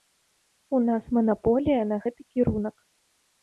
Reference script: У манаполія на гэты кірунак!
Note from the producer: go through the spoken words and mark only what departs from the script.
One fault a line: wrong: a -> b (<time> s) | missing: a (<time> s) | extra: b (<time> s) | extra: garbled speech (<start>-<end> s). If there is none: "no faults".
extra: нас (0.9 s)